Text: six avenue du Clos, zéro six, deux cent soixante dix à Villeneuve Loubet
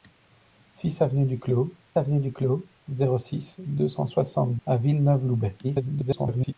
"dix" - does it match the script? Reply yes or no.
no